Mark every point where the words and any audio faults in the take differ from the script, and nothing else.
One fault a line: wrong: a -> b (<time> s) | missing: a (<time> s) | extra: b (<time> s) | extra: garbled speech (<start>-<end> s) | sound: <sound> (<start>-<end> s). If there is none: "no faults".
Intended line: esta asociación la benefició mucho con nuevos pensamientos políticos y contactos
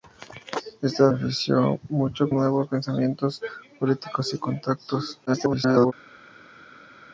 missing: asociación la (1.1 s)
missing: con (2.3 s)
extra: garbled speech (5.3-5.9 s)